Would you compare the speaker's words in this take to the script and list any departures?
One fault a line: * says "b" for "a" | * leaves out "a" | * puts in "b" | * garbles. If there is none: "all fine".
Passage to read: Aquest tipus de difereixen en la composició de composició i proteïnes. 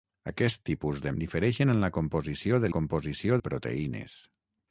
all fine